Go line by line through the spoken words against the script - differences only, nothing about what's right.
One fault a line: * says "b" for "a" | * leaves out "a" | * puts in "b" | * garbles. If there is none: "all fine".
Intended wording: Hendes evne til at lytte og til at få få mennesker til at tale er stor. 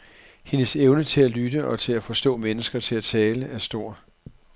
* leaves out "få"